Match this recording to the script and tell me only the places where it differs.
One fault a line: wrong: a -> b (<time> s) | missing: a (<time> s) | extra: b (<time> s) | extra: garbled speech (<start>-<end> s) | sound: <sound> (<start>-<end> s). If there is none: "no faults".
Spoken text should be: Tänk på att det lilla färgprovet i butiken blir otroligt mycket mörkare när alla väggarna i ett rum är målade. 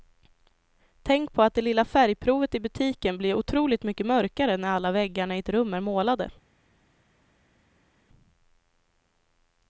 no faults